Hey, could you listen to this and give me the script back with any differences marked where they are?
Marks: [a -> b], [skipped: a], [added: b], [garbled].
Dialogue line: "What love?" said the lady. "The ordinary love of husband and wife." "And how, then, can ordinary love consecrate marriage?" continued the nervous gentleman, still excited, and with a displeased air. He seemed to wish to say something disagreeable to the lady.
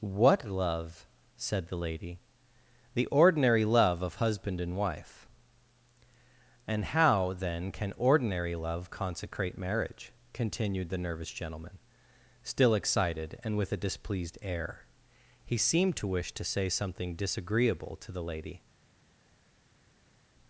"What love?" said the lady. "The ordinary love of husband and wife." "And how, then, can ordinary love consecrate marriage?" continued the nervous gentleman, still excited, and with a displeased air. He seemed to wish to say something disagreeable to the lady.